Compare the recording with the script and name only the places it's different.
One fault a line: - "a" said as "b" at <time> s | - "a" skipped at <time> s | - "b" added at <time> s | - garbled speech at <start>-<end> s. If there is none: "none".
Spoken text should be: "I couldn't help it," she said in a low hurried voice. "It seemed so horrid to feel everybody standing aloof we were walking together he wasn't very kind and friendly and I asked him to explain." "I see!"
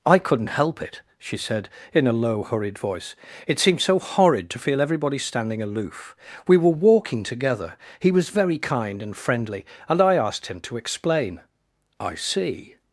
- "wasn't" said as "was" at 8.1 s